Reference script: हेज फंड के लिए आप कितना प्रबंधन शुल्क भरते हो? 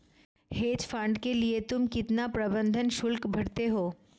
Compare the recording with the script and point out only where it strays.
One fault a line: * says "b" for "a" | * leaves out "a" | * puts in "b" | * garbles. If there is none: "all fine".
* says "तुम" for "आप"